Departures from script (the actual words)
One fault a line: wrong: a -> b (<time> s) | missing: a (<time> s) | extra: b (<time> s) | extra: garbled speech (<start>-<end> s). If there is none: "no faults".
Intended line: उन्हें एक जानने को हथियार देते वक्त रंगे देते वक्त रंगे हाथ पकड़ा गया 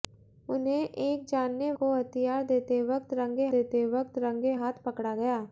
no faults